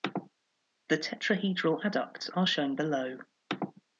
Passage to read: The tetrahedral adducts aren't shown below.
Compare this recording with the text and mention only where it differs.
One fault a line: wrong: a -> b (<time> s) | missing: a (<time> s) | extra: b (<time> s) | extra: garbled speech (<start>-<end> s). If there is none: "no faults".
wrong: aren't -> are (2.4 s)